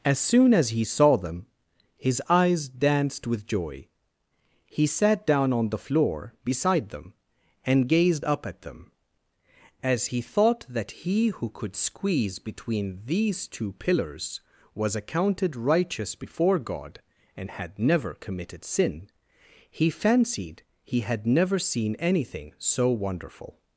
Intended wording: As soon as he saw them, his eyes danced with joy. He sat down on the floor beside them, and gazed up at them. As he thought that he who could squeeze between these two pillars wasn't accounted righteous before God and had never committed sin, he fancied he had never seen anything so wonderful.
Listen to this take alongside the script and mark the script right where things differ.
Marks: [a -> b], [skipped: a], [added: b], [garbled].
As soon as he saw them, his eyes danced with joy. He sat down on the floor beside them, and gazed up at them. As he thought that he who could squeeze between these two pillars [wasn't -> was] accounted righteous before God and had never committed sin, he fancied he had never seen anything so wonderful.